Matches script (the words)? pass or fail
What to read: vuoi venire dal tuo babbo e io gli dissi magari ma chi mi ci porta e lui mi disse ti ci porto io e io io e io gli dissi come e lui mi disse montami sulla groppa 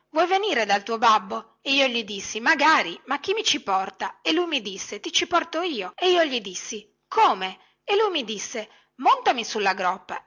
fail